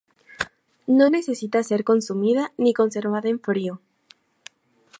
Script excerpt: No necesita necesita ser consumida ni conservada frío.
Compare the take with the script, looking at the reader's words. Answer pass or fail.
fail